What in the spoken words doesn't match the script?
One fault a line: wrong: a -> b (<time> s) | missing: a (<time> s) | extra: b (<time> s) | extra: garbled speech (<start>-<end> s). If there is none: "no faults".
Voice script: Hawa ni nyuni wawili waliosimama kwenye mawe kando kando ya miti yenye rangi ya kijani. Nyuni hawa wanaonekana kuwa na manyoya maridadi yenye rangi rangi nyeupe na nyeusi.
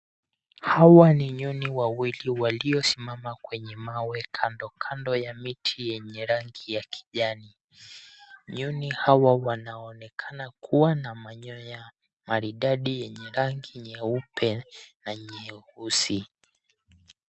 missing: rangi (13.8 s)